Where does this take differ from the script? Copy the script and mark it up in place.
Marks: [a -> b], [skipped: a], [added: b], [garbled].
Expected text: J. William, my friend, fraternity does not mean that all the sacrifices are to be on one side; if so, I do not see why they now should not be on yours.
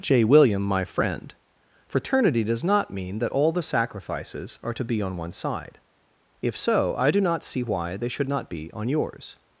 J. William, my friend, fraternity does not mean that all the sacrifices are to be on one side; if so, I do not see why they [skipped: now] should not be on yours.